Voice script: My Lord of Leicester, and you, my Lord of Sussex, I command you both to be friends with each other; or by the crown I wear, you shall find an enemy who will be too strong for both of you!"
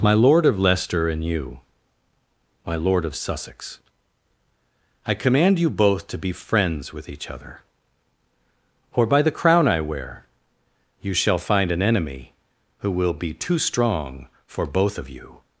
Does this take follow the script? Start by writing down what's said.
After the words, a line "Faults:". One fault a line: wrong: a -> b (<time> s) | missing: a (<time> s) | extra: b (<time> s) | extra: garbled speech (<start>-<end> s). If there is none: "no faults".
My Lord of Leicester, and you, my Lord of Sussex, I command you both to be friends with each other; or by the crown I wear, you shall find an enemy who will be too strong for both of you!"
Faults:
no faults